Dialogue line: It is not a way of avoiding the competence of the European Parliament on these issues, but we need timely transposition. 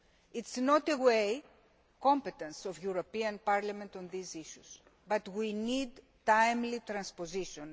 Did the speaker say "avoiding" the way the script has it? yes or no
no